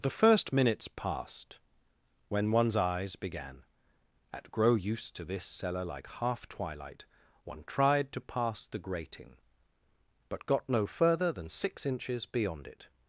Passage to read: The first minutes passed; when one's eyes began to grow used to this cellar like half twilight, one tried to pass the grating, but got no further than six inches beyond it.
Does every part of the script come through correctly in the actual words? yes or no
no